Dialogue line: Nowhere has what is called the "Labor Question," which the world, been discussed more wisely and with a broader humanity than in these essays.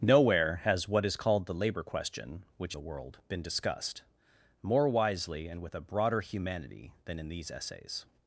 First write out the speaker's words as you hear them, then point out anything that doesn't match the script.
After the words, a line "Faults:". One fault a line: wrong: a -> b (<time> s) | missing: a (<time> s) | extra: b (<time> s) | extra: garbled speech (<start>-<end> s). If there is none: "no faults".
Nowhere has what is called the "Labor Question," which the world, been discussed more wisely and with a broader humanity than in these essays.
Faults:
no faults